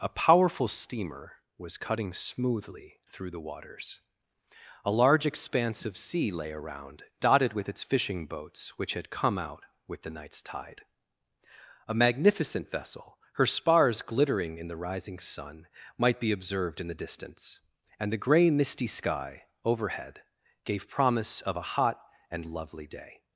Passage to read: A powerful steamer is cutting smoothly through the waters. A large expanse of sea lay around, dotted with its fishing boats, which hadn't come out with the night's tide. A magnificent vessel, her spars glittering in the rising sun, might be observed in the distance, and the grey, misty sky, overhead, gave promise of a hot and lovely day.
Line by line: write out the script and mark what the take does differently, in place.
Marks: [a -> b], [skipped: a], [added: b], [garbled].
A powerful steamer [is -> was] cutting smoothly through the waters. A large expanse of sea lay around, dotted with its fishing boats, which [hadn't -> had] come out with the night's tide. A magnificent vessel, her spars glittering in the rising sun, might be observed in the distance, and the grey, misty sky, overhead, gave promise of a hot and lovely day.